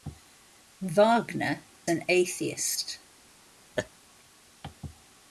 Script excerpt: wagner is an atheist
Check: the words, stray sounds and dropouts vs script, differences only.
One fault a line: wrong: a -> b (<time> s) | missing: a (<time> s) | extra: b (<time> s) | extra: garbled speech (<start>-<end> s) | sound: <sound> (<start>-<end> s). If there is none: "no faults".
missing: is (1.6 s)
sound: laugh (3.8-3.9 s)